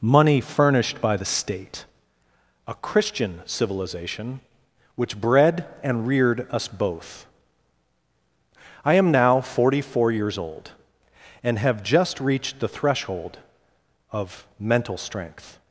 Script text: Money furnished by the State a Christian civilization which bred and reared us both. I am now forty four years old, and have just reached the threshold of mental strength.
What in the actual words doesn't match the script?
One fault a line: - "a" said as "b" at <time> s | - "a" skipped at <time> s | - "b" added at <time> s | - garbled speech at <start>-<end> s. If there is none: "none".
none